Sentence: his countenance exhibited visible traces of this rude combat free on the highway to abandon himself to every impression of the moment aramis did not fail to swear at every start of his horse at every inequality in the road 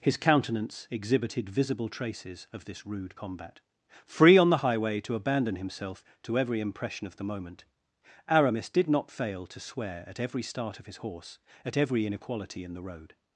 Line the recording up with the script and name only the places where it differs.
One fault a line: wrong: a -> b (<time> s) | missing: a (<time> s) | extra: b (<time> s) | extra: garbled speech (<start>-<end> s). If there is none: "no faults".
no faults